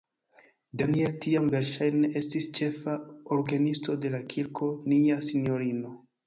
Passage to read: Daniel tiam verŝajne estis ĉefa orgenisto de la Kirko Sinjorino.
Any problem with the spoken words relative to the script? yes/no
yes